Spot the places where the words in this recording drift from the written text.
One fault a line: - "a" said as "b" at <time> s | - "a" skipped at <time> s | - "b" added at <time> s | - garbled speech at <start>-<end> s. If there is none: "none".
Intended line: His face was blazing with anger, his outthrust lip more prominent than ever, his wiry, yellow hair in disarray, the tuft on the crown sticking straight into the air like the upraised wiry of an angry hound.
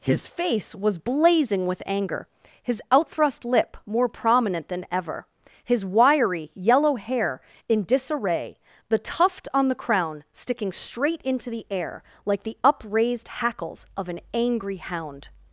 - "wiry" said as "hackles" at 13.3 s